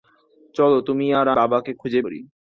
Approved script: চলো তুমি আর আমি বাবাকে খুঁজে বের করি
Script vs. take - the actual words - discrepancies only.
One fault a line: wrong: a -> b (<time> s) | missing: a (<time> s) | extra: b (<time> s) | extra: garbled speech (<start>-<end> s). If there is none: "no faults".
missing: আমি (1.3 s)
missing: বের (2.0 s)